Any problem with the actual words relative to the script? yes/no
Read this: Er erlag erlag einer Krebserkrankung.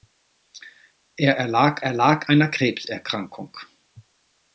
no